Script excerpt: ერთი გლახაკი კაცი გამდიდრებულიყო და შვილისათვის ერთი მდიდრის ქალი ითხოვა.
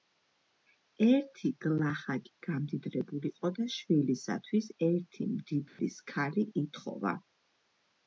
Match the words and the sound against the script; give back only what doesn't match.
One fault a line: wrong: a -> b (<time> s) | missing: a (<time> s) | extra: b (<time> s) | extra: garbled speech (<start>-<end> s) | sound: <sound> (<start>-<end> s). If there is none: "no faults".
missing: კაცი (2.3 s)
sound: dropout (5.7-5.8 s)